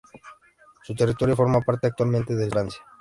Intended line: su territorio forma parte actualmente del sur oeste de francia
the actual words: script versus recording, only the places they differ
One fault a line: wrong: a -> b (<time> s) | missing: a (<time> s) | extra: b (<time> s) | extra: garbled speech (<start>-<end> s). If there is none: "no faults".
missing: sur oeste de (2.5 s)